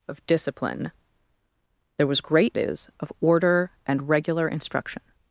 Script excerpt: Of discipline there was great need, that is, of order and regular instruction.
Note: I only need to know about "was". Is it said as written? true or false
true